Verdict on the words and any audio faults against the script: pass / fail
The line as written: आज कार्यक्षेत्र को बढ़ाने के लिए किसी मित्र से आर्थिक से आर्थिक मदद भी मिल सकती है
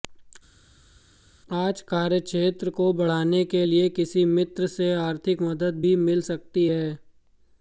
fail